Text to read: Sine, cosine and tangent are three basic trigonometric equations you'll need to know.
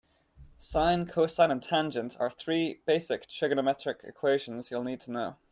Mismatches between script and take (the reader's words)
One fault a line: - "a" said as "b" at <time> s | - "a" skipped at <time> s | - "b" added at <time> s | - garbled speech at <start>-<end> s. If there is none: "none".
none